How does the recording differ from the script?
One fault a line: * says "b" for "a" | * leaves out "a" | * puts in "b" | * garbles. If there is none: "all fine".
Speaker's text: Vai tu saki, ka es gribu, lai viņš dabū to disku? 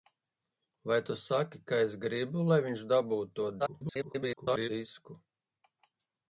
* garbles